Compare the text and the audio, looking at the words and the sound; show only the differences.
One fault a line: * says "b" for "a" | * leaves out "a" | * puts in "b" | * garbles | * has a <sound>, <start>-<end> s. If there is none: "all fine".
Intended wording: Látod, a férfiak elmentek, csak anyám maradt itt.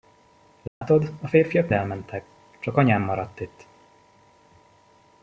* has a dropout, 0.7-0.8 s